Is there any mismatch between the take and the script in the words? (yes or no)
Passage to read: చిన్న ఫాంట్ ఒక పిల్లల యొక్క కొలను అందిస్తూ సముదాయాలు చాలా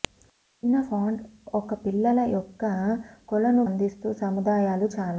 no